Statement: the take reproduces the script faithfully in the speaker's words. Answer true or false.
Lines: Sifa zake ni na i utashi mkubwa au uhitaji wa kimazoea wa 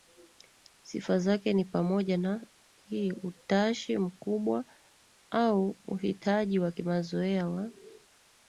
false